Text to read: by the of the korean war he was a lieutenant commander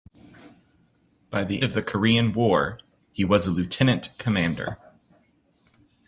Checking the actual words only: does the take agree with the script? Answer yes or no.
yes